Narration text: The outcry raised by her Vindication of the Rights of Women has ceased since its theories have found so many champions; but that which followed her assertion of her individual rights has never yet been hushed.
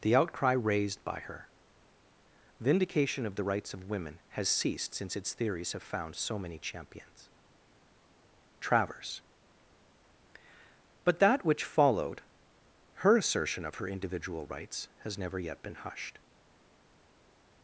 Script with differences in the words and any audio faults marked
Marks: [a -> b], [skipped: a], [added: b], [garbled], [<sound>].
The outcry raised by her Vindication of the Rights of Women has ceased since its theories have found so many champions; [added: travers] but that which followed her assertion of her individual rights has never yet been hushed.